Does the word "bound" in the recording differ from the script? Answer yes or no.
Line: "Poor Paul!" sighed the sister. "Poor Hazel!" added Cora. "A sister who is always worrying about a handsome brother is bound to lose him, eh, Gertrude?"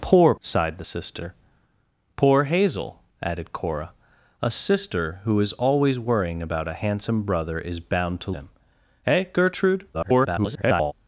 no